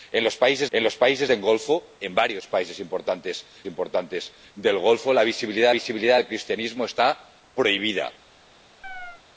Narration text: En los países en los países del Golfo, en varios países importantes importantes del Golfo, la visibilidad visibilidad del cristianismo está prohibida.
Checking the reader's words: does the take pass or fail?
pass